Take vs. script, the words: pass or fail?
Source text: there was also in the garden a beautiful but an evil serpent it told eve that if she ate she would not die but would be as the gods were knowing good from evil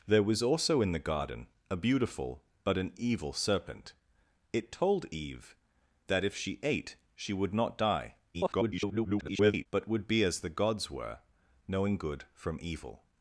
fail